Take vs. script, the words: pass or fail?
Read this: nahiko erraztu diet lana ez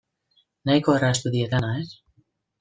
pass